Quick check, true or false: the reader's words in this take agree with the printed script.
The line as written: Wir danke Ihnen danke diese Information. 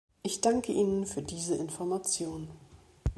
false